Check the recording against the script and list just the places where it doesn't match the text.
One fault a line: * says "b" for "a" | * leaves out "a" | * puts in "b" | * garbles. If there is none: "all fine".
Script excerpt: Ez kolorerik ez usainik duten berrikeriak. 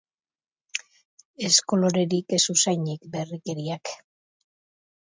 * leaves out "duten"